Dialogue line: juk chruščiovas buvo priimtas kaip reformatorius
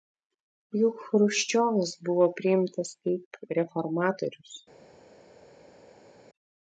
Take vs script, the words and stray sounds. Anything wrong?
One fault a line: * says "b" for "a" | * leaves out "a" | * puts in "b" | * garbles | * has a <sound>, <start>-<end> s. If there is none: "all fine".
all fine